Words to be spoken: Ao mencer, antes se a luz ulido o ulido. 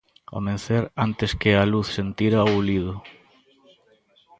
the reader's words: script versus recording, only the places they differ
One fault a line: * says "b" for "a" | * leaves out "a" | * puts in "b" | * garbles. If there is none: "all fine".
* says "que" for "se"
* says "sentira" for "ulido"